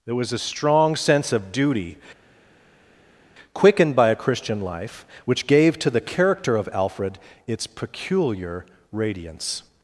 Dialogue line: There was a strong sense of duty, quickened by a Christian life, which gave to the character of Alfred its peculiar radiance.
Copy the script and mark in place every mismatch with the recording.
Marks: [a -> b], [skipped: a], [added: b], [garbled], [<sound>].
There was a strong sense of duty, quickened by a Christian life, which gave to the character of Alfred its peculiar radiance.